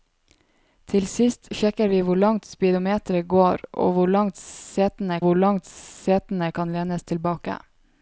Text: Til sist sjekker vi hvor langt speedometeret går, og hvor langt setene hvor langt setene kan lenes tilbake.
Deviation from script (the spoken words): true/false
false